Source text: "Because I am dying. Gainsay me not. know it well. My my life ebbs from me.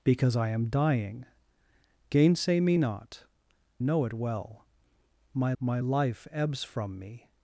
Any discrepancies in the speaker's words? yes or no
no